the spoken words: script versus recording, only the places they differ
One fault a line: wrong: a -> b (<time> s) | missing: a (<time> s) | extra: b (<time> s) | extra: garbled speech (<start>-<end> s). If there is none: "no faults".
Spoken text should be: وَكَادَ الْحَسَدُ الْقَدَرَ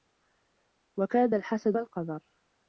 no faults